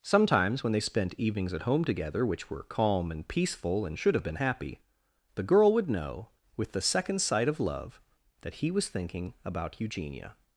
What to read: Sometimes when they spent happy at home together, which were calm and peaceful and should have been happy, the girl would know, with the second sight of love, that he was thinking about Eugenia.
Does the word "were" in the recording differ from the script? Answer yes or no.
no